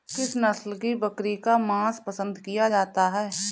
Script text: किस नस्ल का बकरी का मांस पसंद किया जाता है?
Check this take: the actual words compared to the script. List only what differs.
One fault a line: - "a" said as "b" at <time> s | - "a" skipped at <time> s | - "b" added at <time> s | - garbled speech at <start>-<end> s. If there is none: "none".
- "का" said as "की" at 0.8 s